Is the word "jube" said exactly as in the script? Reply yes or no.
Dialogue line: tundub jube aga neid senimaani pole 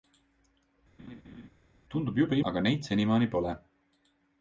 yes